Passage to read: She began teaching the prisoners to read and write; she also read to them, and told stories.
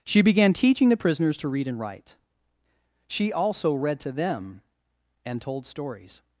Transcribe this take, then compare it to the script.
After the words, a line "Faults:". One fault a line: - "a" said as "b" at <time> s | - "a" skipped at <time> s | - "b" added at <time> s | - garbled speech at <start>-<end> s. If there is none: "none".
She began teaching the prisoners to read and write; she also read to them, and told stories.
Faults:
none